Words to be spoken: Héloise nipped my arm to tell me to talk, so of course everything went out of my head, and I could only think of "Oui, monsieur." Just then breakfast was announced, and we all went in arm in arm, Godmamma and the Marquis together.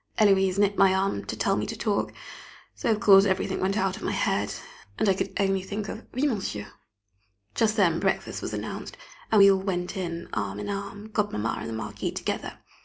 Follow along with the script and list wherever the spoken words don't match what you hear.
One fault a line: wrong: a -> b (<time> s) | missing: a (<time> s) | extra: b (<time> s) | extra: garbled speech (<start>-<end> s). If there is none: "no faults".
no faults